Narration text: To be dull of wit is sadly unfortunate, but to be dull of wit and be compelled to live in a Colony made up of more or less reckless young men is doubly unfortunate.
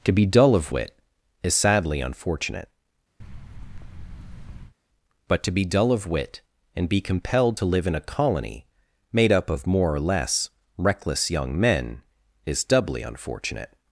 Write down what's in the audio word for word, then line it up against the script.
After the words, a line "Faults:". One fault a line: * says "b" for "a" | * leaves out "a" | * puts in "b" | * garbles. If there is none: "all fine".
To be dull of wit is sadly unfortunate, but to be dull of wit and be compelled to live in a Colony made up of more or less reckless young men is doubly unfortunate.
Faults:
all fine